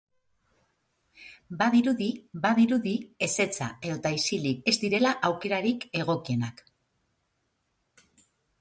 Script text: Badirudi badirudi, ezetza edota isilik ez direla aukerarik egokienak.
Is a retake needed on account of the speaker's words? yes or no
no